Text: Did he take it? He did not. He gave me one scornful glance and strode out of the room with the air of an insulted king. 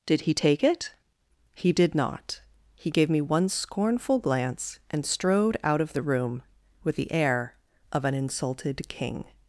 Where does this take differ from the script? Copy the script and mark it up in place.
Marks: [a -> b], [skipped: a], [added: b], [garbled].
Did he take it? He did not. He gave me one scornful glance and strode out of the room with the air of an insulted king.